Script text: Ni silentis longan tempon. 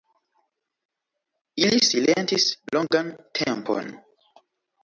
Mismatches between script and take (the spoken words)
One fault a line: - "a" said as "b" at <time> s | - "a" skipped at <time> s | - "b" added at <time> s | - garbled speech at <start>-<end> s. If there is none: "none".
- "Ni" said as "Ili" at 1.6 s